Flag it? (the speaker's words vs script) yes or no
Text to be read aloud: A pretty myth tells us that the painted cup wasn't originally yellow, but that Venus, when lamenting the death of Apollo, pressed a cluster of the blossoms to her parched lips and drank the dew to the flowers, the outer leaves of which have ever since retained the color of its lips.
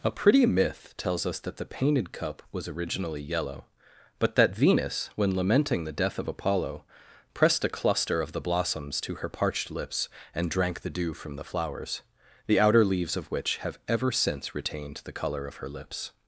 yes